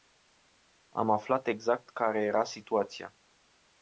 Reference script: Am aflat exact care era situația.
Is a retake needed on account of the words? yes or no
no